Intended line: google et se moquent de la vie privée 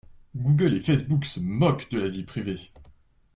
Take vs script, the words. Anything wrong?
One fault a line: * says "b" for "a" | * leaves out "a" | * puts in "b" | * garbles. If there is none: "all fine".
* puts in "facebook"